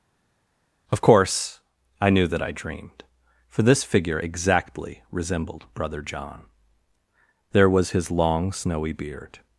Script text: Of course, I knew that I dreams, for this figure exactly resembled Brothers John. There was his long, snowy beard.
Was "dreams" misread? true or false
true